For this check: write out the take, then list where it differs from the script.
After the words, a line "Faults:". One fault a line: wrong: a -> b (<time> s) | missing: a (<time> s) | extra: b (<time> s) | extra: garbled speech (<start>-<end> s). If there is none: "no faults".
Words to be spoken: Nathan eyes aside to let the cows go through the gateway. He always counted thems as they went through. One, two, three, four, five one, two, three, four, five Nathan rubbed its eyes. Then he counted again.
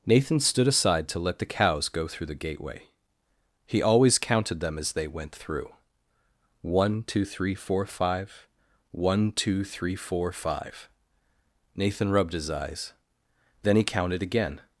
Nathan stood aside to let the cows go through the gateway. He always counted them as they went through. One, two, three, four, five one, two, three, four, five Nathan rubbed his eyes. Then he counted again.
Faults:
wrong: eyes -> stood (0.4 s)
wrong: thems -> them (4.6 s)
wrong: its -> his (12.3 s)